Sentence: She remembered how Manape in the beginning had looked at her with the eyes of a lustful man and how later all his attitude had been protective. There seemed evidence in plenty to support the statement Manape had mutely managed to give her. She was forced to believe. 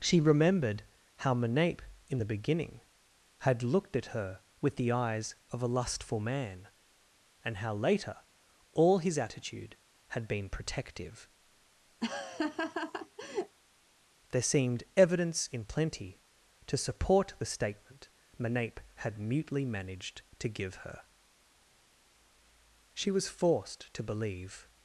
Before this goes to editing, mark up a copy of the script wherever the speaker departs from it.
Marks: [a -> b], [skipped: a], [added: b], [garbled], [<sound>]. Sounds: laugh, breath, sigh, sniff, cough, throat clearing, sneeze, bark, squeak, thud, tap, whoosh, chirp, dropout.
She remembered how Manape in the beginning had looked at her with the eyes of a lustful man and how later all his attitude had been protective. [laugh] There seemed evidence in plenty to support the statement Manape had mutely managed to give her. She was forced to believe.